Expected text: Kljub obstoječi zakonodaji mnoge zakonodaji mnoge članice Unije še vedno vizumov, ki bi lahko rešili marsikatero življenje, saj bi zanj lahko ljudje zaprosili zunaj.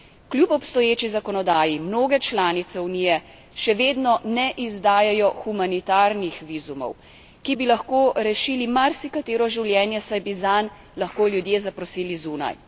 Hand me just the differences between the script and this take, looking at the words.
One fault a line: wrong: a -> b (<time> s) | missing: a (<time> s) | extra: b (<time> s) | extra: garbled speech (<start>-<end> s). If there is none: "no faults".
missing: zakonodaji mnoge (2.2 s)
extra: ne izdajajo humanitarnih (4.2 s)